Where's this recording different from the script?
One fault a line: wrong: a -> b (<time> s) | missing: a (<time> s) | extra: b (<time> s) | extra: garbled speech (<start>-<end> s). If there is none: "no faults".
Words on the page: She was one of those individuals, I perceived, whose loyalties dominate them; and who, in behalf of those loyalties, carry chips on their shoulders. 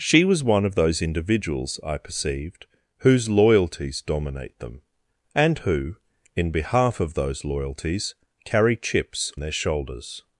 missing: on (9.3 s)